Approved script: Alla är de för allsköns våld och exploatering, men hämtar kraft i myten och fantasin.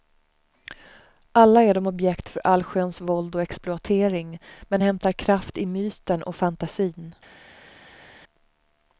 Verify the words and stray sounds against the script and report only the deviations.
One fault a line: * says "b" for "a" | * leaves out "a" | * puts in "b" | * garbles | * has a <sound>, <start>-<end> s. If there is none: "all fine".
* puts in "objekt"